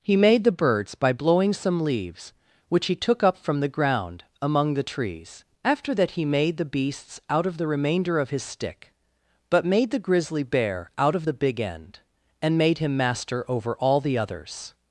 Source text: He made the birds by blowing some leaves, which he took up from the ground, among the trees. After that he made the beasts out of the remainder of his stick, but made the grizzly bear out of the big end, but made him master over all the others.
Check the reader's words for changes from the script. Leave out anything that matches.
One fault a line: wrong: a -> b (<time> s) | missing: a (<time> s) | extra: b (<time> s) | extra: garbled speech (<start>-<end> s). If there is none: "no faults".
wrong: but -> and (12.4 s)